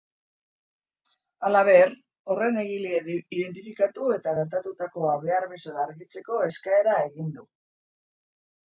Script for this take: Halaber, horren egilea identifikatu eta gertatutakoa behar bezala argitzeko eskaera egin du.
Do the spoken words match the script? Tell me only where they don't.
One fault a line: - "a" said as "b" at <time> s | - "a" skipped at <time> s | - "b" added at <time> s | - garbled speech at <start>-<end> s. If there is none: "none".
none